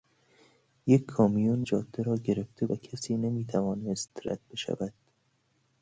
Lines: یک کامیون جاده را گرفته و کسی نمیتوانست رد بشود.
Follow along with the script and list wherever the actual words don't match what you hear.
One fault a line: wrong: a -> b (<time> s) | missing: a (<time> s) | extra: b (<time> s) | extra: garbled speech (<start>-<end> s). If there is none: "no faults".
no faults